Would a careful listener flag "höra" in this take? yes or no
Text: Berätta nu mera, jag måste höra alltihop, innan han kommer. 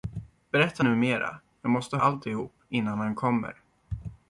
yes